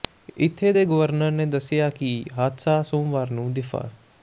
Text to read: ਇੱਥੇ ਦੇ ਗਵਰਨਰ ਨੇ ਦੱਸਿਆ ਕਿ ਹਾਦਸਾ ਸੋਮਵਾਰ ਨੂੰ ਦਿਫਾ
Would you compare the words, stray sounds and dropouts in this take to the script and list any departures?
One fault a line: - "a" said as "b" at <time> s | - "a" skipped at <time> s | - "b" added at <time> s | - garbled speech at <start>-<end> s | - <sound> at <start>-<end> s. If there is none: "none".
none